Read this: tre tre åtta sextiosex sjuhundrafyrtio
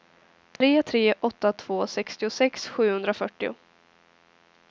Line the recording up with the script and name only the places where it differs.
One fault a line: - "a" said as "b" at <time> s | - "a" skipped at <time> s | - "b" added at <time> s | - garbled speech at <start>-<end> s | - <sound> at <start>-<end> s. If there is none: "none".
- dropout at 0.6-0.6 s
- "två" added at 1.5 s